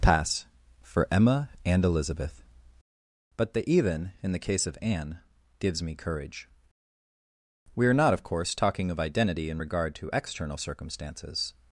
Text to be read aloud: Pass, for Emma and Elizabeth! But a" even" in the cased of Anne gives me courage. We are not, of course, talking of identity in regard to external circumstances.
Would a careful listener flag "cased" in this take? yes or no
yes